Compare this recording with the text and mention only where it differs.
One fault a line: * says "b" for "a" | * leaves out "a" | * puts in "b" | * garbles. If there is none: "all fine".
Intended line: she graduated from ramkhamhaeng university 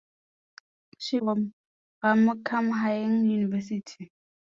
* leaves out "graduated"